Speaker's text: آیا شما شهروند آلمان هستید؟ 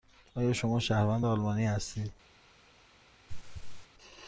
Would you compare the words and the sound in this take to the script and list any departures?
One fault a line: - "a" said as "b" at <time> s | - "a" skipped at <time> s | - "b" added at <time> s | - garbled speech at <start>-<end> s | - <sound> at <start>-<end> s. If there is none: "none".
- throat clearing at 3.3-3.9 s